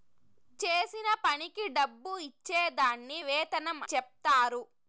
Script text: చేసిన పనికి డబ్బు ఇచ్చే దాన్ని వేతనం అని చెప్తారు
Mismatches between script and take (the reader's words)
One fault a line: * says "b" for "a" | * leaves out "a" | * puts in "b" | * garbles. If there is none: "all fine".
* leaves out "అని"